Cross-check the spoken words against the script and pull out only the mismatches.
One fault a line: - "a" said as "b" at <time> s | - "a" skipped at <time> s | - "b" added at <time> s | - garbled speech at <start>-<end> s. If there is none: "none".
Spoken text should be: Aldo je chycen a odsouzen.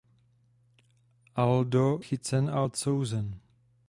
- "je" skipped at 2.0 s